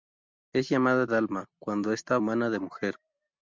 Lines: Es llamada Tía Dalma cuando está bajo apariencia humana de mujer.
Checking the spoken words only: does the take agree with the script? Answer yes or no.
no